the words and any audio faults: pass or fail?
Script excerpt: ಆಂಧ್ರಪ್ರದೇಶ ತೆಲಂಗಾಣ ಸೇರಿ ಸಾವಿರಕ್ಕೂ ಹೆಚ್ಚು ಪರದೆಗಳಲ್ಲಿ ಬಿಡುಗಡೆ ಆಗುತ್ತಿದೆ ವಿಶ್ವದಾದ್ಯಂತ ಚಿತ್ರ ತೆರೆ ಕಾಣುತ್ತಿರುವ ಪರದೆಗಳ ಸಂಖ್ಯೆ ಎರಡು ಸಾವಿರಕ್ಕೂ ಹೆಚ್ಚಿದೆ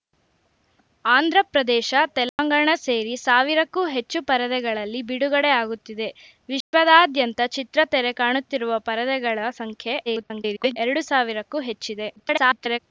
fail